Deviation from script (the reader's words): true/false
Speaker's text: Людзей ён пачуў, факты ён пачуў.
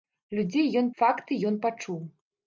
true